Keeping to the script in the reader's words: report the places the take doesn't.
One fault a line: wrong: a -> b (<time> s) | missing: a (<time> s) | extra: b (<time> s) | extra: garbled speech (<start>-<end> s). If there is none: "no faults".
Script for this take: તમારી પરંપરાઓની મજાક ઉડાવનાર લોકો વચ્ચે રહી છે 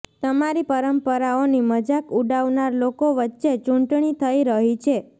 extra: ચૂંટણી થઈ (3.6 s)